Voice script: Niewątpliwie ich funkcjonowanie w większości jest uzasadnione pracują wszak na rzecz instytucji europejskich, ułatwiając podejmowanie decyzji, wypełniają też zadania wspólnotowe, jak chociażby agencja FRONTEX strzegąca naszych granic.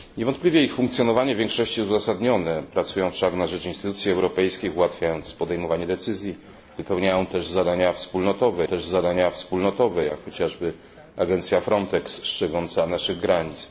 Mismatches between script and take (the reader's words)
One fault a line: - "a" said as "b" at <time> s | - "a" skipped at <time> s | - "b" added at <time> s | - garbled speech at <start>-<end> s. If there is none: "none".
- "też zadania wspólnotowe" added at 8.6 s